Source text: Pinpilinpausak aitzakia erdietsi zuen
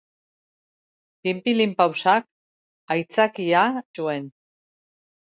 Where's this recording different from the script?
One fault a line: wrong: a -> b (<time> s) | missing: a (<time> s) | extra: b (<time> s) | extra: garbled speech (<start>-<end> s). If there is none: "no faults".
missing: erdietsi (3.6 s)